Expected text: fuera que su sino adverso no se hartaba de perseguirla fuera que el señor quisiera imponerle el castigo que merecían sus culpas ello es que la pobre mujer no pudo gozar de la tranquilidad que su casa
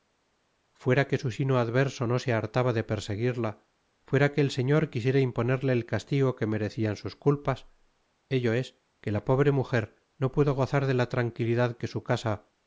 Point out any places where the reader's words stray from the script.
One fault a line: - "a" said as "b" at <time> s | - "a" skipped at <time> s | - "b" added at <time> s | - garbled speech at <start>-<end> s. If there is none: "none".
none